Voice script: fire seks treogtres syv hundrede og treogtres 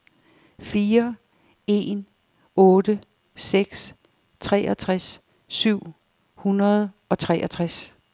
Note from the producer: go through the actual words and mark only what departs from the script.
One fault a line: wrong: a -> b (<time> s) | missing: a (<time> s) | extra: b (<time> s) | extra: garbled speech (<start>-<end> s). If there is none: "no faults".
extra: en otte (1.7 s)